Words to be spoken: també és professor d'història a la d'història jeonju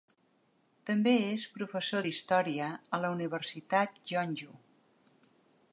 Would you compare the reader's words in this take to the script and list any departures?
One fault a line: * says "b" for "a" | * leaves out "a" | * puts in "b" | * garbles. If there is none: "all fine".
* says "universitat" for "d'història"